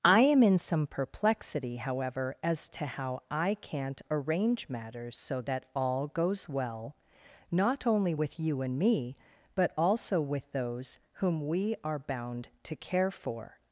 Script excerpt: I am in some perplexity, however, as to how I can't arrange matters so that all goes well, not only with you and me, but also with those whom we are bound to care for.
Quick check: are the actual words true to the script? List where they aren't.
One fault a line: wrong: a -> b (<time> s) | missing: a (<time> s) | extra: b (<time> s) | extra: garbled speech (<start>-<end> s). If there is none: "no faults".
no faults